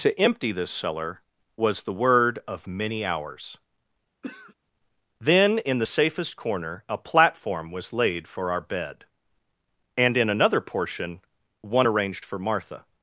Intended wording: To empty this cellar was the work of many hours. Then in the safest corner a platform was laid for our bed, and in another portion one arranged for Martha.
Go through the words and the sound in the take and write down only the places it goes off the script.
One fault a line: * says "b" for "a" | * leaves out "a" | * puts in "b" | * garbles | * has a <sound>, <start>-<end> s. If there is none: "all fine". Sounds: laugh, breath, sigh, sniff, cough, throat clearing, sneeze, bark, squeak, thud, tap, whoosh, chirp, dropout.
* says "word" for "work"
* has a throat clearing, 4.2-4.5 s